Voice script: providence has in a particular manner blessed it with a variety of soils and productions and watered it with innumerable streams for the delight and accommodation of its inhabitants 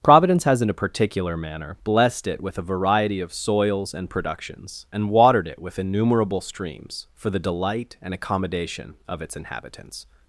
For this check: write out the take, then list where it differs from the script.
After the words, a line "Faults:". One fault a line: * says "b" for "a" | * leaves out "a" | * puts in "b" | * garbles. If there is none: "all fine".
providence has in a particular manner blessed it with a variety of soils and productions and watered it with innumerable streams for the delight and accommodation of its inhabitants
Faults:
all fine